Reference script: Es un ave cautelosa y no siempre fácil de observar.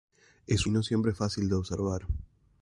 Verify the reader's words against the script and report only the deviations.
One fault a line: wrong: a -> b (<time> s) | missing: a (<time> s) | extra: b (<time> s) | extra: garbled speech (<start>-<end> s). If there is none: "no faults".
missing: un ave cautelosa (0.7 s)